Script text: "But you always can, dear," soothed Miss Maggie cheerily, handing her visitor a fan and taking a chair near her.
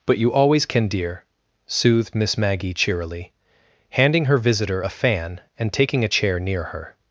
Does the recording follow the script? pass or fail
pass